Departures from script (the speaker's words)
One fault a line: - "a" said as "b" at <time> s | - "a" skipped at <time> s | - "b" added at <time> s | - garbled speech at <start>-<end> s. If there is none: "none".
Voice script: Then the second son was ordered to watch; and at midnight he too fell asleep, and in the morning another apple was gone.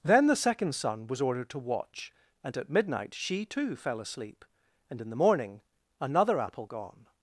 - "he" said as "she" at 3.1 s
- "was" skipped at 6.7 s